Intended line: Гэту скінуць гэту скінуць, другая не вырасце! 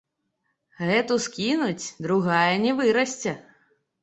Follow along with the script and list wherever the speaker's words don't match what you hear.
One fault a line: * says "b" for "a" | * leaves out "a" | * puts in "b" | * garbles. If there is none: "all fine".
* leaves out "гэту скінуць"